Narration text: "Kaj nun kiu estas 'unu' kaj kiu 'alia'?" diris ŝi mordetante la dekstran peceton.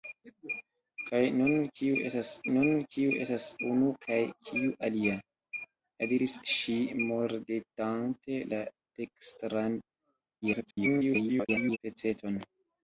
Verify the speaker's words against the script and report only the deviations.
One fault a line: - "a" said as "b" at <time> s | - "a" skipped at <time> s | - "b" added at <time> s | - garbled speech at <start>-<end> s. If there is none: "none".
- "nun kiu estas" added at 2.6 s
- garbled speech at 10.4-11.8 s